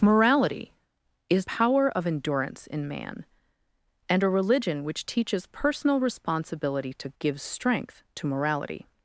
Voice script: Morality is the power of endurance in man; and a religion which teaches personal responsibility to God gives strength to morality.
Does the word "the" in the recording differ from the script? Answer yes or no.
yes